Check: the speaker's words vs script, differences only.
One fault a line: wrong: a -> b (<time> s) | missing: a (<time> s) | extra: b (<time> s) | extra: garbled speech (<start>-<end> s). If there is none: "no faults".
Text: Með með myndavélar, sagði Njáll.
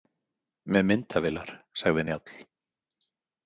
missing: með (0.9 s)